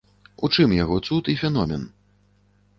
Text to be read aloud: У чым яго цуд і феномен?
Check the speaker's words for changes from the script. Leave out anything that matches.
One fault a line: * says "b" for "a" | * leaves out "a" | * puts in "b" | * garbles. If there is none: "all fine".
all fine